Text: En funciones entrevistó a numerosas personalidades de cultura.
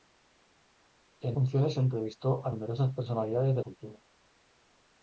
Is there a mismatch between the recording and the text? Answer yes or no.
no